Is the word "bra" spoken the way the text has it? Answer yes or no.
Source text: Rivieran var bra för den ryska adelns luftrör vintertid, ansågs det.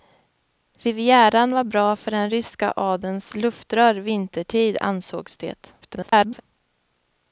yes